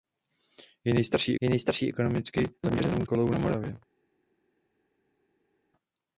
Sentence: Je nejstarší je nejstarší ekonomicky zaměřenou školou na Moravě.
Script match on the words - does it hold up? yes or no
yes